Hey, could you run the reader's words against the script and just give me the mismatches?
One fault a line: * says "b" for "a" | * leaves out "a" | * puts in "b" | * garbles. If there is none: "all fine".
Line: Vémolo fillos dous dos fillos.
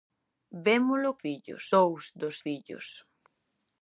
all fine